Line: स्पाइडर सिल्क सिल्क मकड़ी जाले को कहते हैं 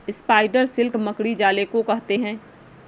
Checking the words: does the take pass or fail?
fail